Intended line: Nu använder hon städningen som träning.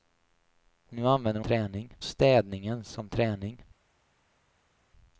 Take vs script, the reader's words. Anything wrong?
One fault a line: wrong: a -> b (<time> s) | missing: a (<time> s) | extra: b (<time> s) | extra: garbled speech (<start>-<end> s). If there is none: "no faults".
wrong: hon -> träning (1.4 s)